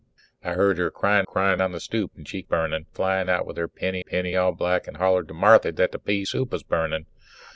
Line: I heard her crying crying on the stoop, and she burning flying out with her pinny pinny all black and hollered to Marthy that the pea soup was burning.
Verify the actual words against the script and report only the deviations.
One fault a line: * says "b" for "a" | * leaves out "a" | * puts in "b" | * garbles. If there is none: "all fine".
all fine